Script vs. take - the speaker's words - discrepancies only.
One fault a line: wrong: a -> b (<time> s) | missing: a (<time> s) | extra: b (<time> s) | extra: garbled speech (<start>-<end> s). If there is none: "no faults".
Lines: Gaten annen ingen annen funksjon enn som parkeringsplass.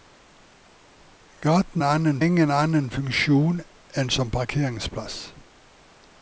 no faults